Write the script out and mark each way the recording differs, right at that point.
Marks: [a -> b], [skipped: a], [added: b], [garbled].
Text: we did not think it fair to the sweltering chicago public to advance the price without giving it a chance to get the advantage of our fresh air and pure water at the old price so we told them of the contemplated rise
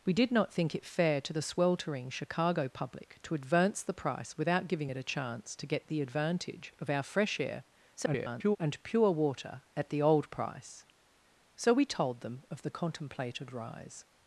we did not think it fair to the sweltering chicago public to advance the price without giving it a chance to get the advantage of our fresh air [garbled] and pure water at the old price so we told them of the contemplated rise